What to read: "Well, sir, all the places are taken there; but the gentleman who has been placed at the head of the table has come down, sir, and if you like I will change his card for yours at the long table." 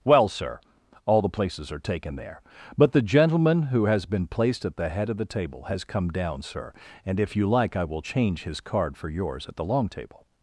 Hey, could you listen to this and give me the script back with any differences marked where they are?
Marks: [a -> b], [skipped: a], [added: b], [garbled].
"Well, sir, all the places are taken there; but the gentleman who has been placed at the head of the table has come down, sir, and if you like I will change his card for yours at the long table."